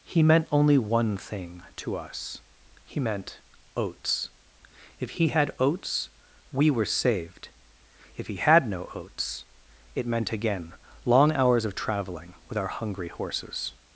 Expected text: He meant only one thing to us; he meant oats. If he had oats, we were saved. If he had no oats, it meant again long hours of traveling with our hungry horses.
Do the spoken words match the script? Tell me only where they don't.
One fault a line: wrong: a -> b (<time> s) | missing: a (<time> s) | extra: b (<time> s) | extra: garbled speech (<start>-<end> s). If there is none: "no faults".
no faults